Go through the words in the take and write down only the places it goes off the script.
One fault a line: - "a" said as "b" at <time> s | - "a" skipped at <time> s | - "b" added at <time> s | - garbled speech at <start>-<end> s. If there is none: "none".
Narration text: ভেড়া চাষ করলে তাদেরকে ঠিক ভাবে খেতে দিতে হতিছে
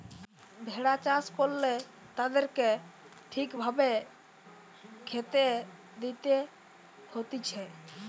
none